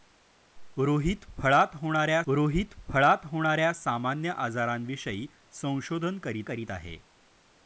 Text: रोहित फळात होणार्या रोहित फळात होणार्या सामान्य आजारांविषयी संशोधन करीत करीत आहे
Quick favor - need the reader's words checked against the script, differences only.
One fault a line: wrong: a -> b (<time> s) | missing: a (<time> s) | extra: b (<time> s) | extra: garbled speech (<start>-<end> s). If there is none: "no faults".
no faults